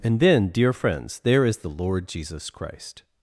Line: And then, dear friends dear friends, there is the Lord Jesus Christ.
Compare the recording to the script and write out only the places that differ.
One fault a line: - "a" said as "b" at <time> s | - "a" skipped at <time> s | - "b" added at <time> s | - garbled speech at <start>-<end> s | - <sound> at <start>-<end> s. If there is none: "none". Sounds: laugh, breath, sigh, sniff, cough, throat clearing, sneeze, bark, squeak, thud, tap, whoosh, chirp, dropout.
- "dear friends" skipped at 1.2 s